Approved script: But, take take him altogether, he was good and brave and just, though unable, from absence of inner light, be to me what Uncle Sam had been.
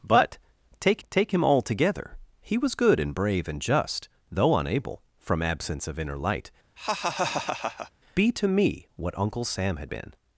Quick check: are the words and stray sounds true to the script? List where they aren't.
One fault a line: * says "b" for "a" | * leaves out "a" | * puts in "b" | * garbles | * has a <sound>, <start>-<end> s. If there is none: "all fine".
* has a laugh, 6.8-7.9 s